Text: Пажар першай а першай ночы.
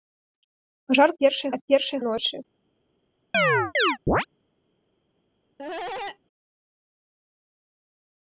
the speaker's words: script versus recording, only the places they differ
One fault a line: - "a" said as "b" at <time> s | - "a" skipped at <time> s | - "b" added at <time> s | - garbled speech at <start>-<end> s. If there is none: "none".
none